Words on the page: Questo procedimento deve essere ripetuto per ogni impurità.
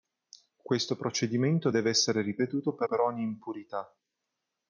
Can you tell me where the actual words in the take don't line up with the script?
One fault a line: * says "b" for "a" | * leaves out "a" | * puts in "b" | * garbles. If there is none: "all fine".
* puts in "per"